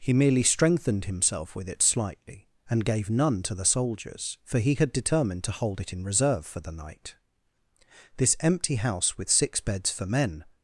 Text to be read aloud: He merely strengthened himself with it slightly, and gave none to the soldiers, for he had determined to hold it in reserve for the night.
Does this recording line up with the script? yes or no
no